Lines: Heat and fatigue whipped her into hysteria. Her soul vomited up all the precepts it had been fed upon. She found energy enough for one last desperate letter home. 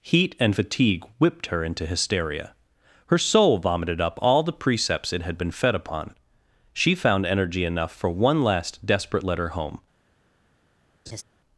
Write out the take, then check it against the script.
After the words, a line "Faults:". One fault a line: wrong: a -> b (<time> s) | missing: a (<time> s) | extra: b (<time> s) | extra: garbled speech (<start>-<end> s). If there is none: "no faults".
Heat and fatigue whipped her into hysteria. Her soul vomited up all the precepts it had been fed upon. She found energy enough for one last desperate letter home.
Faults:
no faults